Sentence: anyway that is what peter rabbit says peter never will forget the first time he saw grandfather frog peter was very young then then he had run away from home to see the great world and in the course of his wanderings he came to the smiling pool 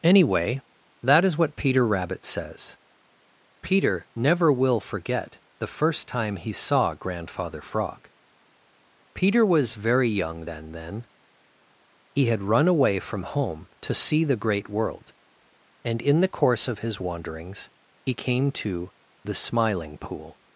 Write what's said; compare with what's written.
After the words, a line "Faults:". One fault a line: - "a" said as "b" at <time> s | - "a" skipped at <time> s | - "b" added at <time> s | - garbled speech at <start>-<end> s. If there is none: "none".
anyway that is what peter rabbit says peter never will forget the first time he saw grandfather frog peter was very young then then he had run away from home to see the great world and in the course of his wanderings he came to the smiling pool
Faults:
none